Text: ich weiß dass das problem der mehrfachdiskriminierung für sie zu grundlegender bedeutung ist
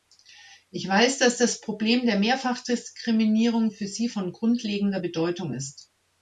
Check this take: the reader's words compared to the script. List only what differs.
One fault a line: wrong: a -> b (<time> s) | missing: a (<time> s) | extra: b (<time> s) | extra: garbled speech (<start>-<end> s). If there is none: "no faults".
wrong: zu -> von (4.1 s)